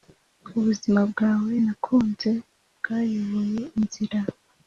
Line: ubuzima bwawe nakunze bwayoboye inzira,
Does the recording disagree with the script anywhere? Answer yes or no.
no